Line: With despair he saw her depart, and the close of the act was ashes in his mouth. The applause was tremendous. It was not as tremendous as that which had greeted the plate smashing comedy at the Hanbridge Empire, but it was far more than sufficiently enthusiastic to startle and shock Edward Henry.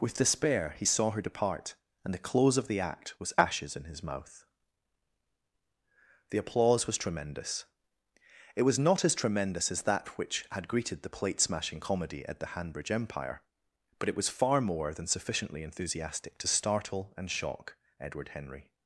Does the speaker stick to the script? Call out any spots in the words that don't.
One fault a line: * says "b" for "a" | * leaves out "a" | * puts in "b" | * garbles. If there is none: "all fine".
all fine